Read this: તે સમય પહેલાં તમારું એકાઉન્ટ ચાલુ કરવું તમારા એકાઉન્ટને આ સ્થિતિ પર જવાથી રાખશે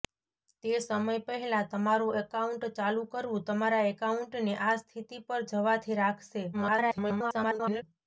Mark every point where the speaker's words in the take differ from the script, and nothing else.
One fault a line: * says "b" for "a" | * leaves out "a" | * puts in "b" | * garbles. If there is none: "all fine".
* garbles